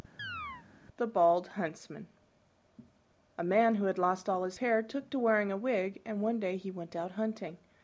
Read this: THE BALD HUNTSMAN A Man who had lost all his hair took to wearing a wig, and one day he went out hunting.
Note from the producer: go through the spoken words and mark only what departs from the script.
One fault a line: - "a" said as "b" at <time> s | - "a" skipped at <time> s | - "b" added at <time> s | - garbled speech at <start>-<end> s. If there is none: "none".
none